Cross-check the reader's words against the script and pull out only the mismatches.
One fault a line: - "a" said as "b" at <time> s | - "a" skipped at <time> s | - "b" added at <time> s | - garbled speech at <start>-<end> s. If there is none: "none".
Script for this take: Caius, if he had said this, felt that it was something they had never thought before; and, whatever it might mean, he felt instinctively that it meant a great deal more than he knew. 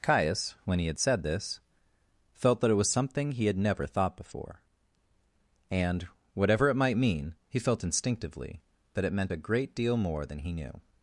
- "if" said as "when" at 0.7 s
- "they" said as "he" at 3.3 s